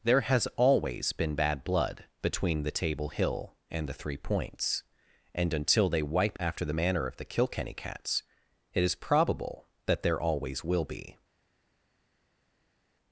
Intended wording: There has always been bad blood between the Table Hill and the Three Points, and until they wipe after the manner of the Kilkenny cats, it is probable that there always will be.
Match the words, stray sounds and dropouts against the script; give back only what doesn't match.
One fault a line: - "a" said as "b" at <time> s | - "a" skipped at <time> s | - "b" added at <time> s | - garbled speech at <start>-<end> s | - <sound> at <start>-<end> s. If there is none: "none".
none